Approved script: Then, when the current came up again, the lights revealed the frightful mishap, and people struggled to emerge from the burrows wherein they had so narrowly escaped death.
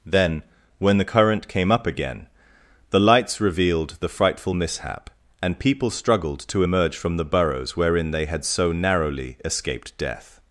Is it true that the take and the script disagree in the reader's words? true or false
false